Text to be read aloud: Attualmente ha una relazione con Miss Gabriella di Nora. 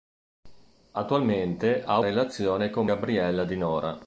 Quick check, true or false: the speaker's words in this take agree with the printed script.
false